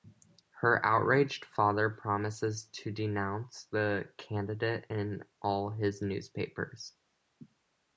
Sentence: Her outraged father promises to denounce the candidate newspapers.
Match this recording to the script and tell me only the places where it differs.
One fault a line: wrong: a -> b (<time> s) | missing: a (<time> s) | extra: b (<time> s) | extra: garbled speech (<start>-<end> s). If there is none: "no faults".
extra: in all his (4.9 s)